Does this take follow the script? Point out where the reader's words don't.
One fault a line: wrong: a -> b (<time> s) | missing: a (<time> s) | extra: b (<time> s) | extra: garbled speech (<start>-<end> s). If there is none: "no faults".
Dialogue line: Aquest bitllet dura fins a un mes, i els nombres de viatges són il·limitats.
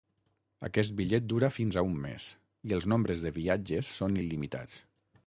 no faults